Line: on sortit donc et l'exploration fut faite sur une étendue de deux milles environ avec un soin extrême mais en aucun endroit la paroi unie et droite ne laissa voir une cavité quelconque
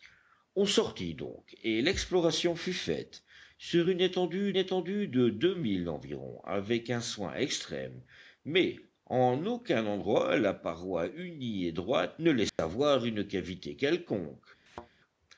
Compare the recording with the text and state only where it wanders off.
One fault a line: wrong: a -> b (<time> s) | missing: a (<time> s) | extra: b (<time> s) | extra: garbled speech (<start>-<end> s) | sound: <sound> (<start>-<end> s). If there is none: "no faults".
extra: étendue (4.6 s)
sound: dropout (12.5-12.6 s)
sound: thud (14.7-14.9 s)